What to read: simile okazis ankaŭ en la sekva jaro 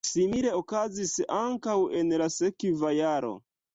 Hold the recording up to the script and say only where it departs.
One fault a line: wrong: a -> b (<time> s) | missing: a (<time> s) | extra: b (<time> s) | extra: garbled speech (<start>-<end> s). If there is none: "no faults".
no faults